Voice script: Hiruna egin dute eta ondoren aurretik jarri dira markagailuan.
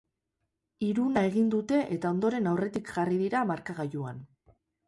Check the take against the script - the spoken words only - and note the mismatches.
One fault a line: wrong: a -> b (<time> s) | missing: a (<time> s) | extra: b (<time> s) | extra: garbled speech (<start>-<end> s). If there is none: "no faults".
no faults